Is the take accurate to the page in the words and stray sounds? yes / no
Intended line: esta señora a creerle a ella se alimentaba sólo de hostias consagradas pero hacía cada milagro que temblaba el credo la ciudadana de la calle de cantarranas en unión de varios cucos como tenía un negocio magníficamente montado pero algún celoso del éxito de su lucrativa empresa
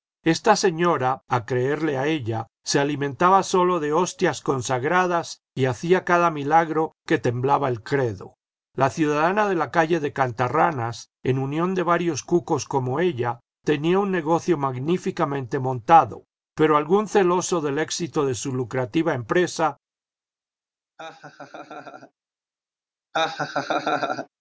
no